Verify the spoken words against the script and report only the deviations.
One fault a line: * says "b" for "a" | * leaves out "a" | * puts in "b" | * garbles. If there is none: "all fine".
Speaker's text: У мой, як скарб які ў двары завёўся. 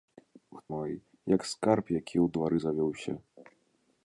all fine